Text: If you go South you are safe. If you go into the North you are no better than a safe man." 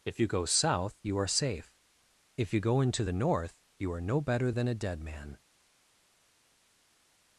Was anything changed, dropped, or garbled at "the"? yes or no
no